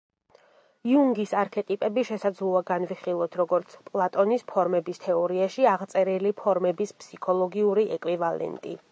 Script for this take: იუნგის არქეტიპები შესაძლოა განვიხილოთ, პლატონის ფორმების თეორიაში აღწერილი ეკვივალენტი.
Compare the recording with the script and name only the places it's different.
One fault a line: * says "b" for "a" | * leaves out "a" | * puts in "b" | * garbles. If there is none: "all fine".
* puts in "როგორც"
* puts in "ფორმების ფსიქოლოგიური"